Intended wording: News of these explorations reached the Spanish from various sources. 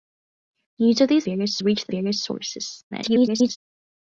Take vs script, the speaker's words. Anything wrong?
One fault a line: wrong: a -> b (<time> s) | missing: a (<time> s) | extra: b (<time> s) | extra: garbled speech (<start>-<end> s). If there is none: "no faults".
wrong: explorations -> various (1.2 s)
missing: Spanish from (1.9 s)
extra: garbled speech (2.9-3.6 s)